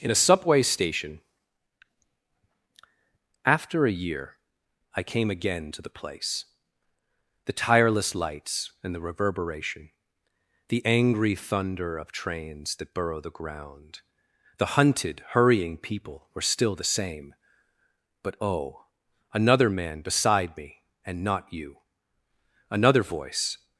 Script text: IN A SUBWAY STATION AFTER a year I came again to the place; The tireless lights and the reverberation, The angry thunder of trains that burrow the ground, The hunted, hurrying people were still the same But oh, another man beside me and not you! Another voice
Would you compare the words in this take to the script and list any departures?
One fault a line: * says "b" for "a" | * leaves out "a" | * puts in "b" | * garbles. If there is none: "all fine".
all fine